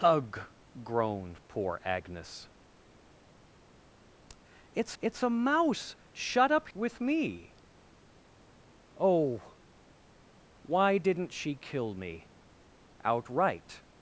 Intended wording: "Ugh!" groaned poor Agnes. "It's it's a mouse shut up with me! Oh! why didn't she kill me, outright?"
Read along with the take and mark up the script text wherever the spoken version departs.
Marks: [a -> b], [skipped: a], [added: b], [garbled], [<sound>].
"Ugh!" groaned poor Agnes. "It's it's a mouse shut up with me! Oh! why didn't she kill me, outright?"